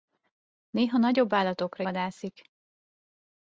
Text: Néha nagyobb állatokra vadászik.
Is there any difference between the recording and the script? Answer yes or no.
no